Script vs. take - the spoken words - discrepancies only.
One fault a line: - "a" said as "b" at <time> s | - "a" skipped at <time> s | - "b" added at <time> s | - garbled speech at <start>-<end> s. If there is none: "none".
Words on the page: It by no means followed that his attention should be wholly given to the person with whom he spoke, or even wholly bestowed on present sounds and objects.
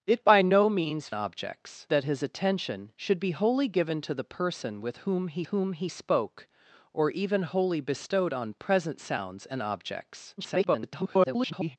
- "followed" said as "objects" at 1.1 s
- "whom he" added at 5.4 s
- garbled speech at 10.4-11.8 s